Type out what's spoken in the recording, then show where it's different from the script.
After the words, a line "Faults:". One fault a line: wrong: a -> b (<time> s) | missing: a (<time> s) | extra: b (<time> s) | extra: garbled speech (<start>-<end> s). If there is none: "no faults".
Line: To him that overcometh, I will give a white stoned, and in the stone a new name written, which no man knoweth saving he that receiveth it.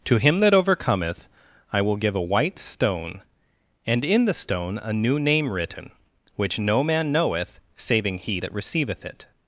To him that overcometh, I will give a white stone, and in the stone a new name written, which no man knoweth saving he that receiveth it.
Faults:
wrong: stoned -> stone (2.6 s)